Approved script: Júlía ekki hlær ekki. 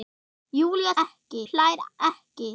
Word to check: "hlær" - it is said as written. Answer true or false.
true